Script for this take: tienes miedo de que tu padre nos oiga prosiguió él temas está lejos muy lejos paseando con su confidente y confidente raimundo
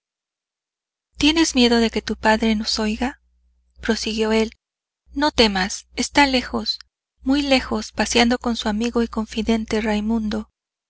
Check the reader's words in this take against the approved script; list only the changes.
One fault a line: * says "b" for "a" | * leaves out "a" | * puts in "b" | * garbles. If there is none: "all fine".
* puts in "no"
* says "amigo" for "confidente"